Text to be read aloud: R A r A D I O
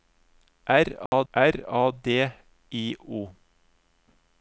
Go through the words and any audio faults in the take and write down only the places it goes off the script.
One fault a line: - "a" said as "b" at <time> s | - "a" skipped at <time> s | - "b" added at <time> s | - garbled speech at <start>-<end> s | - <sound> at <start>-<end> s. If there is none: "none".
- dropout at 1.1-1.1 s